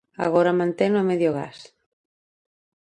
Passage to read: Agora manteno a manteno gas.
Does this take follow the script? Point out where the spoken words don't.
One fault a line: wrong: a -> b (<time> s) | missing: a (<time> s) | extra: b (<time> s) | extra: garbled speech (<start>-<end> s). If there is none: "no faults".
wrong: manteno -> medio (1.1 s)